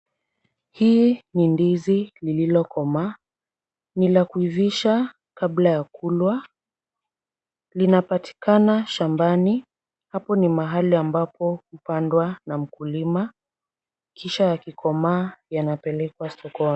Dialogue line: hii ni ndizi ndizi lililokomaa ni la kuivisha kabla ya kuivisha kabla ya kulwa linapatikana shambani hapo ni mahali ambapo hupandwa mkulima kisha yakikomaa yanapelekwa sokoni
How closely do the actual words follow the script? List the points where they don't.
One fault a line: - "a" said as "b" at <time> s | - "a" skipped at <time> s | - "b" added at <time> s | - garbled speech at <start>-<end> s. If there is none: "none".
- "ndizi" skipped at 2.1 s
- "kuivisha kabla ya" skipped at 5.8 s
- "na" added at 12.5 s